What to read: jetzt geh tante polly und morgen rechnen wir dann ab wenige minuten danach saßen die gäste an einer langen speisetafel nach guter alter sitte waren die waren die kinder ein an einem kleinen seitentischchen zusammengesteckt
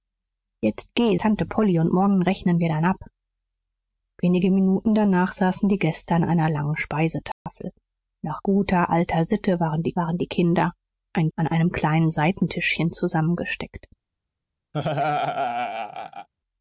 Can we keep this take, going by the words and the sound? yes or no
no